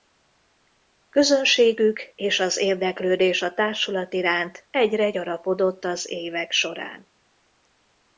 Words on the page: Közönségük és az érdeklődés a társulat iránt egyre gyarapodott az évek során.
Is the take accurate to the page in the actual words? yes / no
yes